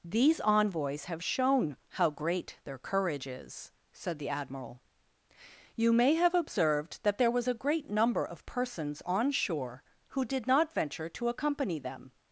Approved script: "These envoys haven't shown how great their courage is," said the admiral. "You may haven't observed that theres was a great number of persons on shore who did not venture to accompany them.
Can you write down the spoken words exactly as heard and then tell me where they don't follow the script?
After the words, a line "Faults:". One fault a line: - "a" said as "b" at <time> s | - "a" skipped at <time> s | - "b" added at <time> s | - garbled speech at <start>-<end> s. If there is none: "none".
"These envoys have shown how great their courage is," said the admiral. "You may have observed that there was a great number of persons on shore who did not venture to accompany them.
Faults:
- "haven't" said as "have" at 1.1 s
- "haven't" said as "have" at 6.1 s
- "theres" said as "there" at 7.2 s